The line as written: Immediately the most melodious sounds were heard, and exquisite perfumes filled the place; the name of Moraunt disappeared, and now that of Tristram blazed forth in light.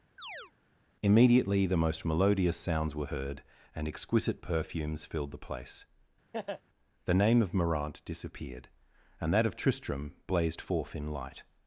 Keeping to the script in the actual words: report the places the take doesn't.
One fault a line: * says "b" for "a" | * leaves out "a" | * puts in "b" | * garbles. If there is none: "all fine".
* leaves out "now"